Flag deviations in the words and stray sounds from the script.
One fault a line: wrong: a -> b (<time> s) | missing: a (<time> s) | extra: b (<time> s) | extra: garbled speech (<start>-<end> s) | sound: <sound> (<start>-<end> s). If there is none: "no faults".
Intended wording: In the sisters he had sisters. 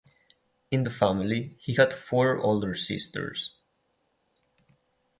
wrong: sisters -> family (0.9 s)
extra: four older (1.9 s)